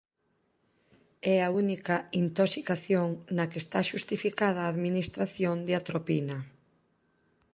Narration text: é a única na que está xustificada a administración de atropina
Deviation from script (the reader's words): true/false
true